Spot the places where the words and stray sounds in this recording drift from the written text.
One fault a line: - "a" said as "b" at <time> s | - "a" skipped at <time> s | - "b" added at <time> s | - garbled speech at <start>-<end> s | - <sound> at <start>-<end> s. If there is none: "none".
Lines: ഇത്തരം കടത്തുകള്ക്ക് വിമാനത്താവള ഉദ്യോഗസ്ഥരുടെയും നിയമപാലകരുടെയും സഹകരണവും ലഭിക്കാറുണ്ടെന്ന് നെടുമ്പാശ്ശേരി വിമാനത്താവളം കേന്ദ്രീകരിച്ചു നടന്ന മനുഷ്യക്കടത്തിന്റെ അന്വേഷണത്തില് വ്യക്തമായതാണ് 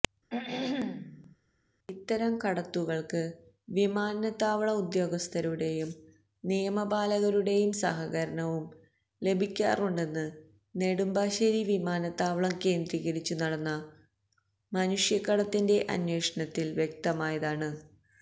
- throat clearing at 0.3-1.4 s